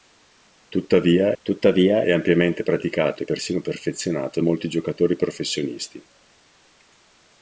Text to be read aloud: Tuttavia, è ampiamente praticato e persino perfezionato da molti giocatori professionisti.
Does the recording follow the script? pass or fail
fail